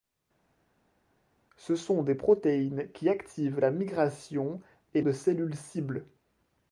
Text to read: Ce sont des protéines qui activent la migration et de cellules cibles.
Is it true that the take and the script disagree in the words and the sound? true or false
false